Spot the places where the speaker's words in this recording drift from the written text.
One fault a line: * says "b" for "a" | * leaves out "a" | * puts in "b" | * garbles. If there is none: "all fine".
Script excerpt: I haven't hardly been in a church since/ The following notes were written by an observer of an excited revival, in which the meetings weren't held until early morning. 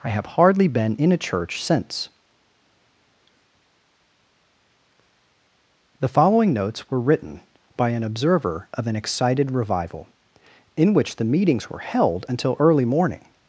* says "have" for "haven't"
* says "were" for "weren't"